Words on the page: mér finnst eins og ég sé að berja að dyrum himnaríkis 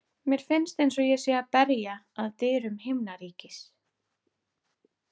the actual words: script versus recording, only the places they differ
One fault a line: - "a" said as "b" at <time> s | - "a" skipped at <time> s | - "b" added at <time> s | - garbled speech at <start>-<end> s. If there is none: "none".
none